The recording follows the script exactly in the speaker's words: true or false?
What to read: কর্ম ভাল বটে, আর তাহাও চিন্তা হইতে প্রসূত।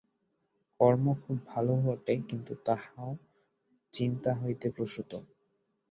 false